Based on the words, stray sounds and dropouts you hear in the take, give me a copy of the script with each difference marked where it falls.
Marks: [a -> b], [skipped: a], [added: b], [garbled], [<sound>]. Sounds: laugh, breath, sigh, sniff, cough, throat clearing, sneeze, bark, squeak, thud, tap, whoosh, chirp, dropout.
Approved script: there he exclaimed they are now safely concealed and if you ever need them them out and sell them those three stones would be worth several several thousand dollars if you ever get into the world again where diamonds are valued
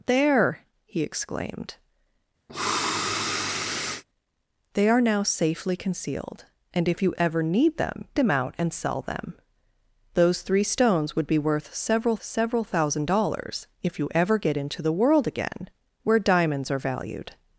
there he exclaimed [sniff] they are now safely concealed and if you ever need them them out and sell them those three stones would be worth several several thousand dollars if you ever get into the world again where diamonds are valued